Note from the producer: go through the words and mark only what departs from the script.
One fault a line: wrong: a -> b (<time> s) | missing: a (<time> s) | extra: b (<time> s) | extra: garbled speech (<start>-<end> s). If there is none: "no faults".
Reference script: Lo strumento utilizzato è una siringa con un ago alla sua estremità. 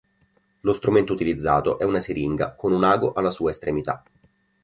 no faults